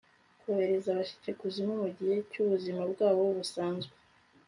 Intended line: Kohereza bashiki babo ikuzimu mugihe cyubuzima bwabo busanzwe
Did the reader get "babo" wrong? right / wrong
wrong